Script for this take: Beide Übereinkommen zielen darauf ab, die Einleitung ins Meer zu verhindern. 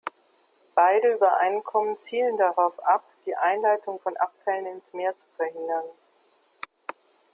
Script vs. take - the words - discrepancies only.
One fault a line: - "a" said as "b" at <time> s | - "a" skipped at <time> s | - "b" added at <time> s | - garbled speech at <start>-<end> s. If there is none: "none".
- "von Abfällen" added at 4.0 s